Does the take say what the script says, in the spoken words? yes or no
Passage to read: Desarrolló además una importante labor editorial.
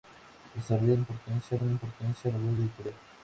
no